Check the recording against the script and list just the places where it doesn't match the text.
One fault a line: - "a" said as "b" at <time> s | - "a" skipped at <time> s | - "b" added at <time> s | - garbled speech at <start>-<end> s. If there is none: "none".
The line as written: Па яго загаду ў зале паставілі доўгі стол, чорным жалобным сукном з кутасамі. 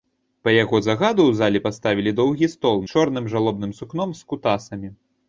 none